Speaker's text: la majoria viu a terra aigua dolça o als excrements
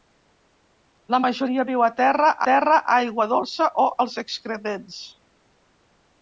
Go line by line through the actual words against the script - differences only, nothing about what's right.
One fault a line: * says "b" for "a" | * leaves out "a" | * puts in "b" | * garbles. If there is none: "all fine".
* puts in "terra"